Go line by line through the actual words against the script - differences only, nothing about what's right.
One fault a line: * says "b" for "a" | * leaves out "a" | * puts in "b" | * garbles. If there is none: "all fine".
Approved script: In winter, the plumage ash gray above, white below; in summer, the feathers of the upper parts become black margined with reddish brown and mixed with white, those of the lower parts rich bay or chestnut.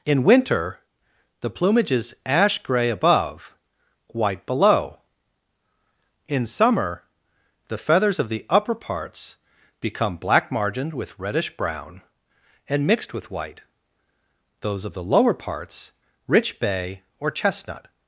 * puts in "is"